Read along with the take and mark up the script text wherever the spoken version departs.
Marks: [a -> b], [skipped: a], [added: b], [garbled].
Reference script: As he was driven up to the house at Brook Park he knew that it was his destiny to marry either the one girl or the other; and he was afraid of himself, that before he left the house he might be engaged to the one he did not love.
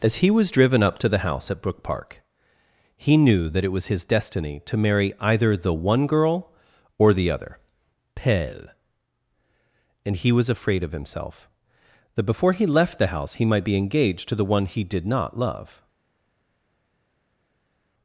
As he was driven up to the house at Brook Park he knew that it was his destiny to marry either the one girl or the other; [added: pelle] and he was afraid of himself, that before he left the house he might be engaged to the one he did not love.